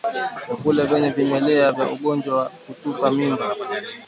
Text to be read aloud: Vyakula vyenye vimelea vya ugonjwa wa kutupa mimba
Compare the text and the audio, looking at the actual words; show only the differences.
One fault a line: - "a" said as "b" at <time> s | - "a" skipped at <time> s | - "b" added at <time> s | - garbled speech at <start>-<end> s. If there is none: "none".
none